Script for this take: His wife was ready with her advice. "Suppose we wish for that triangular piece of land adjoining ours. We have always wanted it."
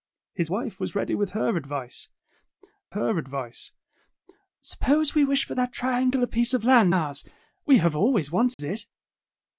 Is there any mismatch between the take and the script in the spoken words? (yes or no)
yes